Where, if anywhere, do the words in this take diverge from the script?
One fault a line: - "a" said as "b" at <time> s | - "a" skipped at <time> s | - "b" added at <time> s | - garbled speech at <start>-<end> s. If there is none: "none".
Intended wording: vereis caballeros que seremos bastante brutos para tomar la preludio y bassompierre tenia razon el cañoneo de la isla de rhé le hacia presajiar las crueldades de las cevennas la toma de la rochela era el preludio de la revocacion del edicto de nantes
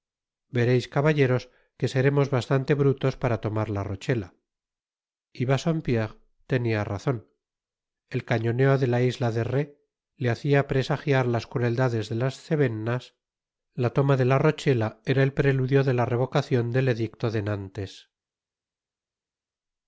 - "preludio" said as "rochela" at 3.8 s